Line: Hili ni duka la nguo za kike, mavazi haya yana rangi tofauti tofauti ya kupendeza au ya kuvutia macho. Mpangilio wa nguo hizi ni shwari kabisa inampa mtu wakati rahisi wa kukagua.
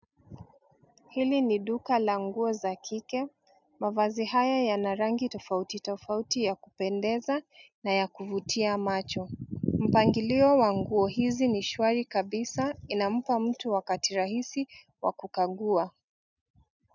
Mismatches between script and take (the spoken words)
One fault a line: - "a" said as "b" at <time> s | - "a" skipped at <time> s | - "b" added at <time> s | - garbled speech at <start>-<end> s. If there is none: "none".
- "au" said as "na" at 7.8 s